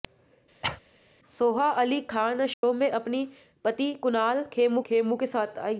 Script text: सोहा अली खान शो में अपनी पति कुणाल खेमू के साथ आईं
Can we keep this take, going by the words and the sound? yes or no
no